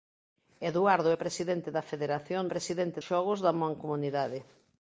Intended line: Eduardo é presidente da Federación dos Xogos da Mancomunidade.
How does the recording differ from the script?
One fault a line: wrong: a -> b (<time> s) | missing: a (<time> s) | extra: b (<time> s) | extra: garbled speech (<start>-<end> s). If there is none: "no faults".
wrong: dos -> presidente (2.5 s)